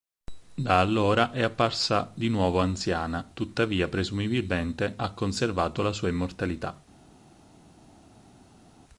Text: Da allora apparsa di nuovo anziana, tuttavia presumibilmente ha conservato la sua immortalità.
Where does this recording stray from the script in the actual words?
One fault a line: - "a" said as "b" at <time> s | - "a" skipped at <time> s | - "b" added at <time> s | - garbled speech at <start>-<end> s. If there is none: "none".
- "è" added at 1.3 s